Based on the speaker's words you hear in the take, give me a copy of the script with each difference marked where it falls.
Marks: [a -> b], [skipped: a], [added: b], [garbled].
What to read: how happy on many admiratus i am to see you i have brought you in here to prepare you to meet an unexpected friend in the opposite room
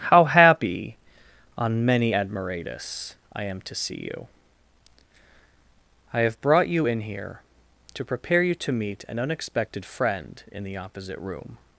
how happy on many admiratus i am to see you i have brought you in here to prepare you to meet an unexpected friend in the opposite room